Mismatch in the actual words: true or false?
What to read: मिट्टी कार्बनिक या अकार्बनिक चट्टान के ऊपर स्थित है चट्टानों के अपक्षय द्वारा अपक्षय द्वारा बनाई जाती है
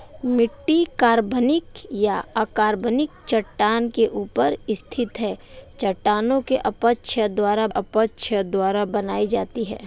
false